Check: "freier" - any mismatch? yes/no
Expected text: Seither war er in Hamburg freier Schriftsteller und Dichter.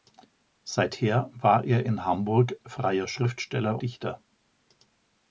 no